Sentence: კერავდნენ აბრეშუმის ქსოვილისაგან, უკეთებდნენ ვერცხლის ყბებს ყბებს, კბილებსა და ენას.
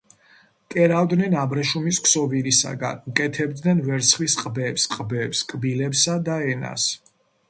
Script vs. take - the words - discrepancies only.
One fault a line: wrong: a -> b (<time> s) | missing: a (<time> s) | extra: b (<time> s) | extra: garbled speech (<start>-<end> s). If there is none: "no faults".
no faults